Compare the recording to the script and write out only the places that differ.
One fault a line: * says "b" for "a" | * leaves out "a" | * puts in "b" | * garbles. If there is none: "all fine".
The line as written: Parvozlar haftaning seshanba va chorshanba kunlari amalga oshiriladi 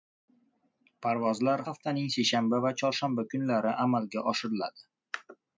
all fine